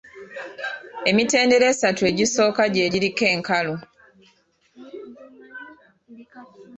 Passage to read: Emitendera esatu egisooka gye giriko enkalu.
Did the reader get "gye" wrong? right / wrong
right